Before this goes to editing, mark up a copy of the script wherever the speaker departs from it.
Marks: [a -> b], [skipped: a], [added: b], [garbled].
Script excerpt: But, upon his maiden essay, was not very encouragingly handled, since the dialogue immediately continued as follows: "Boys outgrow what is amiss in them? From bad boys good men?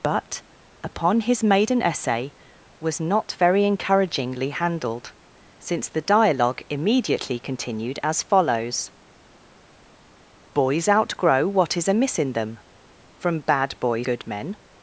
But, upon his maiden essay, was not very encouragingly handled, since the dialogue immediately continued as follows: "Boys outgrow what is amiss in them? From bad boys good men?